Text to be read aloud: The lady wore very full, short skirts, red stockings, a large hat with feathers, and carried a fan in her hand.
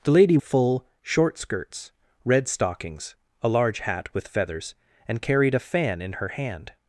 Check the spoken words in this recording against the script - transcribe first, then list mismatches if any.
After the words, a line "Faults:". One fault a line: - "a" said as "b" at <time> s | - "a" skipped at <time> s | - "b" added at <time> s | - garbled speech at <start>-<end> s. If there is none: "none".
The lady full, short skirts, red stockings, a large hat with feathers, and carried a fan in her hand.
Faults:
- "wore very" skipped at 0.4 s